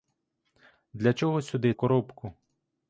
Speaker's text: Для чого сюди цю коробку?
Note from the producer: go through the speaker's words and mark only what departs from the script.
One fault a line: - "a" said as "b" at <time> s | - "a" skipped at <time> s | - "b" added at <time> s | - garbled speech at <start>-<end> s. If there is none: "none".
- "цю" skipped at 1.7 s